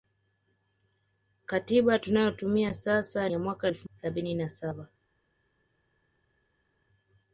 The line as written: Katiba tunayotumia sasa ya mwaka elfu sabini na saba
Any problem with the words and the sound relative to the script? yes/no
no